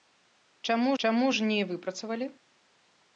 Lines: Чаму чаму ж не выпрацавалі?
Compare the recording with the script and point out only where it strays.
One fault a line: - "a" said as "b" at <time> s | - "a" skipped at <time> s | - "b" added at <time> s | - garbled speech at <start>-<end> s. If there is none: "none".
none